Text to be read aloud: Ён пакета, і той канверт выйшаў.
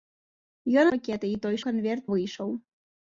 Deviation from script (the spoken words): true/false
false